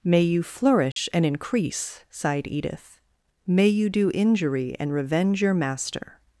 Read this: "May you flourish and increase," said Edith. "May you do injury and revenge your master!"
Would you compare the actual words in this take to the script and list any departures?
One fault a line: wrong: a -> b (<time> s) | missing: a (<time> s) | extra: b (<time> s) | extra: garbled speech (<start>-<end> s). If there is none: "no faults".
wrong: said -> sighed (2.1 s)